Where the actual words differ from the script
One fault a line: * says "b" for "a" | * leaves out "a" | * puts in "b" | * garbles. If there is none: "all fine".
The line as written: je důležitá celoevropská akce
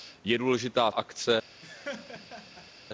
* leaves out "celoevropská"